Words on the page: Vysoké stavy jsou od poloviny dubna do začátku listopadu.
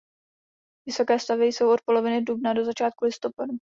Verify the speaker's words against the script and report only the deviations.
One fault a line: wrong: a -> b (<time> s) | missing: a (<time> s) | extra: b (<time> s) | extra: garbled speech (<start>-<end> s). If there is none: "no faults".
no faults